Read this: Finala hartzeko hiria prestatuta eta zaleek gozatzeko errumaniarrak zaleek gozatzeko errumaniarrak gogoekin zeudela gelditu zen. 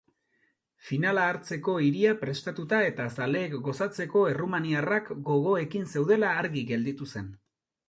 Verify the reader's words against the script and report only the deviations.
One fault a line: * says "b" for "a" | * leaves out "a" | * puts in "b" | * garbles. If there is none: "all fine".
* leaves out "zaleek gozatzeko errumaniarrak"
* puts in "argi"